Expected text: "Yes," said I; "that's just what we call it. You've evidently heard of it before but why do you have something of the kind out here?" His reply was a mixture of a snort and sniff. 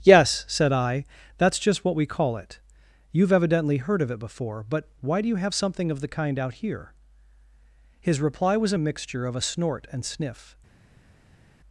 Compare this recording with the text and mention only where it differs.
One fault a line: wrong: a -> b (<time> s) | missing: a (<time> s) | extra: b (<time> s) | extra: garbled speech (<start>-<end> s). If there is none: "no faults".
no faults